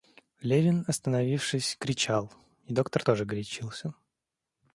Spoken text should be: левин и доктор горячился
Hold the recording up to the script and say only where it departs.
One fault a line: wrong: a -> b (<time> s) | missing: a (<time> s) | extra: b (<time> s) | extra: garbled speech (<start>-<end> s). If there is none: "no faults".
extra: остановившись кричал (0.9 s)
extra: тоже (3.0 s)